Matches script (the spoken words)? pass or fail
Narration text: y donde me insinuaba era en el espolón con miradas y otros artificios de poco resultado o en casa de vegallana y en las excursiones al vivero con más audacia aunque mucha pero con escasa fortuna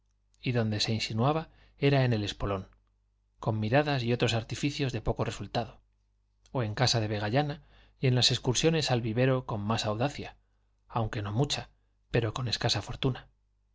fail